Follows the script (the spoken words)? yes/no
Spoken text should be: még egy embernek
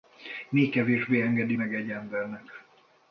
no